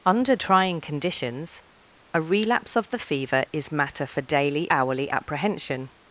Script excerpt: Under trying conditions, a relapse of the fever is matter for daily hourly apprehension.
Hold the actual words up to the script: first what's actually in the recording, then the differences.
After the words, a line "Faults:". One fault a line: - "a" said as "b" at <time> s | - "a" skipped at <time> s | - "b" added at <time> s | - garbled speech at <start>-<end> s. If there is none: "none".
Under trying conditions, a relapse of the fever is matter for daily hourly apprehension.
Faults:
none